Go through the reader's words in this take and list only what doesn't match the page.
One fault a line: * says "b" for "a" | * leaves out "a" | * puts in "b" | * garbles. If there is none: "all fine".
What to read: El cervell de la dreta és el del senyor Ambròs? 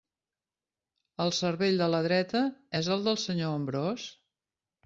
all fine